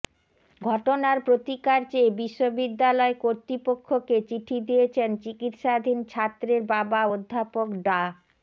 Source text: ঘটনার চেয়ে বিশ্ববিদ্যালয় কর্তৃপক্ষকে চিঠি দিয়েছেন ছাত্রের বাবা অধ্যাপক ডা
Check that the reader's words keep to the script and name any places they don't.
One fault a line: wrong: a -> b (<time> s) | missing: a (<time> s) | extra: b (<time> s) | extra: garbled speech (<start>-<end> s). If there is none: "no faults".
extra: প্রতিকার (1.2 s)
extra: চিকিৎসাধীন (5.2 s)